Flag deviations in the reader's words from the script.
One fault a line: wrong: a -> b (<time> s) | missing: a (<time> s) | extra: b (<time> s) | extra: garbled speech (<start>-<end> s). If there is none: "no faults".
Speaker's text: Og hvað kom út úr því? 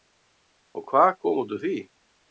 no faults